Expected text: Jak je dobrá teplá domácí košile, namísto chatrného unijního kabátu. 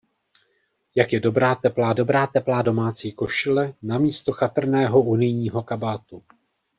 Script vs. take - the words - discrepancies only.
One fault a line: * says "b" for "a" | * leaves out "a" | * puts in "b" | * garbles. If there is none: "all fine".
* puts in "dobrá teplá"